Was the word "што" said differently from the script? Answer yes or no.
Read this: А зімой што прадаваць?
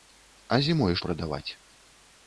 yes